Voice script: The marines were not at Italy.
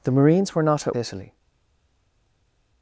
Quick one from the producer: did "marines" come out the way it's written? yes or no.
yes